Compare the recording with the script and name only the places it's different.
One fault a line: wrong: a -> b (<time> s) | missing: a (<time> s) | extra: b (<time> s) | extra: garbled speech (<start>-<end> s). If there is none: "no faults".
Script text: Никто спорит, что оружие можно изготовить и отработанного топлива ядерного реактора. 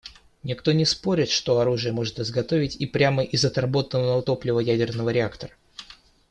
extra: не (0.7 s)
extra: прямо из (2.9 s)